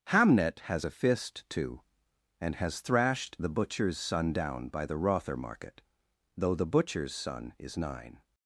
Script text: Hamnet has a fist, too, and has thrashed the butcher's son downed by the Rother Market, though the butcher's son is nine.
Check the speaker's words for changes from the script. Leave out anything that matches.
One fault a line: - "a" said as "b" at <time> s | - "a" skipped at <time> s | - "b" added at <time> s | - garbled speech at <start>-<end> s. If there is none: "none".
- "downed" said as "down" at 4.3 s